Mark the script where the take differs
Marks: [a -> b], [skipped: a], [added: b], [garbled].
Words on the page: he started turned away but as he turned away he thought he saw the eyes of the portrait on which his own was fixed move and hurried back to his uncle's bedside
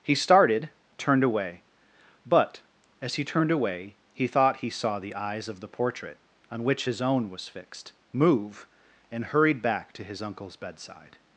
he started turned away but as he turned away he thought he saw the eyes of the portrait on which his own was fixed move and hurried back to his uncle's bedside